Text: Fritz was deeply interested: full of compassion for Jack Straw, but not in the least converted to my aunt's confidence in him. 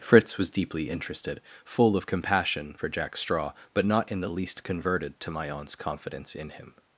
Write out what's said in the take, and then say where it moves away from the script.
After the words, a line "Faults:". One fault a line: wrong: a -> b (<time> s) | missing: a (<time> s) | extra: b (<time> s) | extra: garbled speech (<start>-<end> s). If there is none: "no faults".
Fritz was deeply interested: full of compassion for Jack Straw, but not in the least converted to my aunt's confidence in him.
Faults:
no faults